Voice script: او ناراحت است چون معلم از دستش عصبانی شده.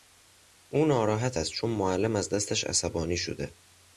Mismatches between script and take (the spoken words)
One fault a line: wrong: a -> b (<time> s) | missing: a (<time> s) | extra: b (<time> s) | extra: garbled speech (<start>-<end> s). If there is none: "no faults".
no faults